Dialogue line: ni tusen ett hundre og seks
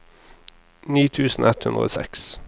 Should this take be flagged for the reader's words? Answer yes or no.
no